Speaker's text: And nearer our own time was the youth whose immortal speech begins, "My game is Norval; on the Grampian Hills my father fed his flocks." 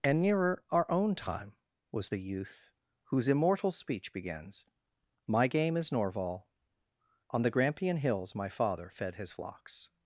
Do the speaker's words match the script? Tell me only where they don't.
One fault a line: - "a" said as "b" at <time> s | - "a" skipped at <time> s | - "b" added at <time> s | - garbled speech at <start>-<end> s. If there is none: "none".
none